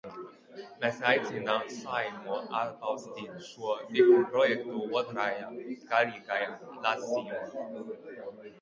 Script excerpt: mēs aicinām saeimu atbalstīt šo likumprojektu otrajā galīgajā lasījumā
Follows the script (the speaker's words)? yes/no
yes